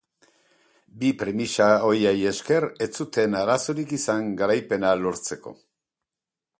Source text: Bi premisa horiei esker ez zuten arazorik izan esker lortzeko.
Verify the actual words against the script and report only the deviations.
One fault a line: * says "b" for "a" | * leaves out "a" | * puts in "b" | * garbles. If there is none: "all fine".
* says "garaipena" for "esker"